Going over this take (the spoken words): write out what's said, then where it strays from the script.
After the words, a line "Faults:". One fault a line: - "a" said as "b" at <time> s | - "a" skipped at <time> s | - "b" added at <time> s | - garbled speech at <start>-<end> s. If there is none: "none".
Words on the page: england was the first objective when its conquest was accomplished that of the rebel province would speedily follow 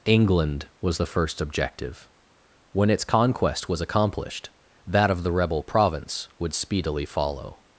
england was the first objective when its conquest was accomplished that of the rebel province would speedily follow
Faults:
none